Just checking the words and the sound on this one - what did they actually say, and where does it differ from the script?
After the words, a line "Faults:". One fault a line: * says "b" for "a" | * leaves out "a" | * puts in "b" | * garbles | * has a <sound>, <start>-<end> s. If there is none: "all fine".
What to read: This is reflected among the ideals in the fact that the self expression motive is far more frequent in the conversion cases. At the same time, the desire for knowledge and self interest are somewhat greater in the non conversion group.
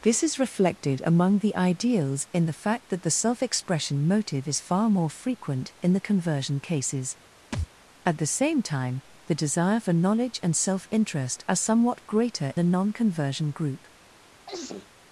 This is reflected among the ideals in the fact that the self expression motive is far more frequent in the conversion cases. At the same time, the desire for knowledge and self interest are somewhat greater the non conversion group.
Faults:
* has a thud, 7.5-7.7 s
* leaves out "in"
* has a sneeze, 14.5-14.9 s